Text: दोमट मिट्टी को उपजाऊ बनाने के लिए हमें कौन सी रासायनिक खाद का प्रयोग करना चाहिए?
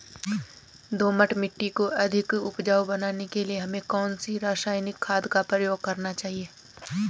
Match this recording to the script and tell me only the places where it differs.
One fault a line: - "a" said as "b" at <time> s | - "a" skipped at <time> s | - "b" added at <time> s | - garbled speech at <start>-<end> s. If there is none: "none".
- "अधिक" added at 2.0 s